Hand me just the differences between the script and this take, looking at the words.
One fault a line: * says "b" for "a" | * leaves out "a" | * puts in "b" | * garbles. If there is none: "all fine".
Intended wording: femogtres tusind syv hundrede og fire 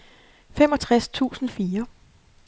* leaves out "syv hundrede og"